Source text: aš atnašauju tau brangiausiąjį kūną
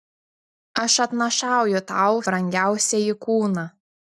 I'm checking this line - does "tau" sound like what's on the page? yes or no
yes